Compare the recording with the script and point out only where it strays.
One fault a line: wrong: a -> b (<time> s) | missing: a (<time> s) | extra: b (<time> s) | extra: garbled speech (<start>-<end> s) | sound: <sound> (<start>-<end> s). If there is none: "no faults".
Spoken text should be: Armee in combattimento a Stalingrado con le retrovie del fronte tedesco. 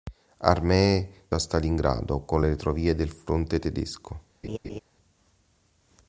missing: in combattimento (1.3 s)
sound: laugh (4.4-4.8 s)